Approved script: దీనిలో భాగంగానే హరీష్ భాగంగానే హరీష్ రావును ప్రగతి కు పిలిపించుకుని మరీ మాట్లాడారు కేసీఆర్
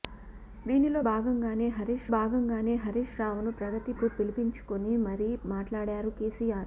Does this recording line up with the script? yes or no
yes